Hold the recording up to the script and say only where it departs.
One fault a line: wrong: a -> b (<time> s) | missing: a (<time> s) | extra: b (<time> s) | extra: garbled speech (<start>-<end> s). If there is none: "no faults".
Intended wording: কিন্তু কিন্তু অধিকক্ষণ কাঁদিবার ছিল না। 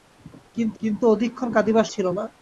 no faults